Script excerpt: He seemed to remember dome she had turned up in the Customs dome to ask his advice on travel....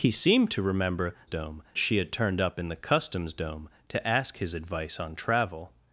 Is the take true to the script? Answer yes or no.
yes